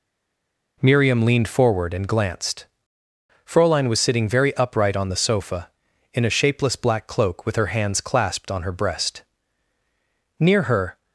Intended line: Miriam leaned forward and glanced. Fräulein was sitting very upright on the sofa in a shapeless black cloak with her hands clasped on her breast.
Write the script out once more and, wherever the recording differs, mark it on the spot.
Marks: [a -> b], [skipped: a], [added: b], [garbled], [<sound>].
Miriam leaned forward and glanced. Fräulein was sitting very upright on the sofa in a shapeless black cloak with her hands clasped on her breast. [added: Near her]